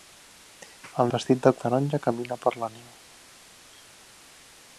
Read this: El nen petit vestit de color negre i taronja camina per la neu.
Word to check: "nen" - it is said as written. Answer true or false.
false